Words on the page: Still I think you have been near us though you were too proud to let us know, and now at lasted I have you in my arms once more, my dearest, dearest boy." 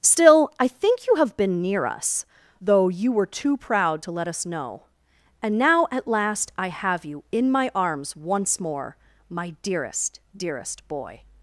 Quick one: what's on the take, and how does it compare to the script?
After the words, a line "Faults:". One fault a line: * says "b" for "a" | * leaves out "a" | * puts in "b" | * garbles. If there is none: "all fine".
Still I think you have been near us though you were too proud to let us know, and now at last I have you in my arms once more, my dearest, dearest boy."
Faults:
* says "last" for "lasted"